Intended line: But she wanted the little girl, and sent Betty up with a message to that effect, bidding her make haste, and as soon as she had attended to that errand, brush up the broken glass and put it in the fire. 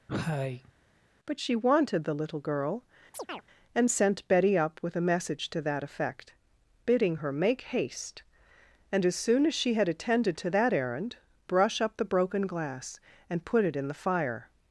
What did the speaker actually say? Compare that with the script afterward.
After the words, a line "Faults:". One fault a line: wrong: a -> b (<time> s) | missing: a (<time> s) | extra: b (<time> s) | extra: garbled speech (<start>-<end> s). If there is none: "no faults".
But she wanted the little girl, and sent Betty up with a message to that effect, bidding her make haste, and as soon as she had attended to that errand, brush up the broken glass and put it in the fire.
Faults:
no faults